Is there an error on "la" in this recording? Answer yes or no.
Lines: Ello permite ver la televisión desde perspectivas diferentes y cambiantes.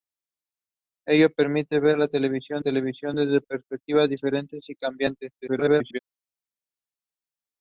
no